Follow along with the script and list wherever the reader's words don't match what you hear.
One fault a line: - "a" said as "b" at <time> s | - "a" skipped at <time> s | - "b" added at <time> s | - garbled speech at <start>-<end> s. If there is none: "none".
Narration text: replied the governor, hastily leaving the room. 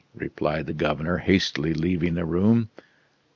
none